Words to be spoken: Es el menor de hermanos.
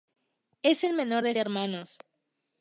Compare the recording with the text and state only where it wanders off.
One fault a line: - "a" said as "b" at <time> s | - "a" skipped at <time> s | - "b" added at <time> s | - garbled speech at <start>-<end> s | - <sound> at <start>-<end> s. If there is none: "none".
none